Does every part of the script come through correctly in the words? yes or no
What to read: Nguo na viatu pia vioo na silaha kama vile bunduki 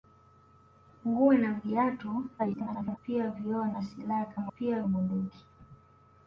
no